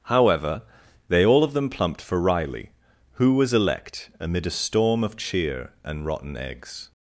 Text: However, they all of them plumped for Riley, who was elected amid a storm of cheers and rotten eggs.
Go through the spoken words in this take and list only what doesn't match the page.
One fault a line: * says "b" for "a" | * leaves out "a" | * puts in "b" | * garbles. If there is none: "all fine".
* says "elect" for "elected"
* says "cheer" for "cheers"